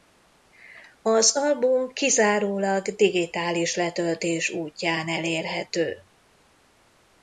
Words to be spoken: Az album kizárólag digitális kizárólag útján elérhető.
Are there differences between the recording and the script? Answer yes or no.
yes